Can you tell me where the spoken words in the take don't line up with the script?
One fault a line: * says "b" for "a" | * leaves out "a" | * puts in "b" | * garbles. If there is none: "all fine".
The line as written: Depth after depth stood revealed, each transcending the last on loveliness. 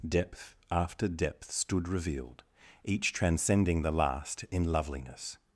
* says "in" for "on"